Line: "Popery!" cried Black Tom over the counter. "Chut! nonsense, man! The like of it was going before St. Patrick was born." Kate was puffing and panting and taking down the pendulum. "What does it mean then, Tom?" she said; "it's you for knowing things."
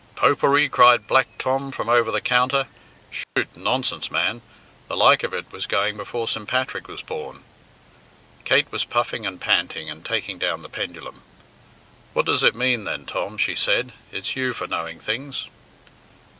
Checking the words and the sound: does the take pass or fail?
fail